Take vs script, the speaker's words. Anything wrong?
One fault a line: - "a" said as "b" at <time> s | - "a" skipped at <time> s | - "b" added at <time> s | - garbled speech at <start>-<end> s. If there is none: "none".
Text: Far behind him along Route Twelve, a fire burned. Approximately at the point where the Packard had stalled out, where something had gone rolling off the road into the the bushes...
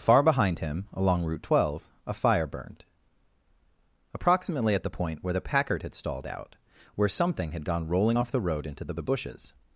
none